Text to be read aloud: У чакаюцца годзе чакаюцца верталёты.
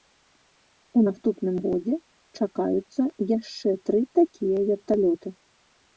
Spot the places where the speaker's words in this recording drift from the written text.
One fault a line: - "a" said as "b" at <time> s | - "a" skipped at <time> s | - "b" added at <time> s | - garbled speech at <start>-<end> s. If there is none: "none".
- "чакаюцца" said as "наступным" at 1.1 s
- "яшчэ тры такія" added at 3.4 s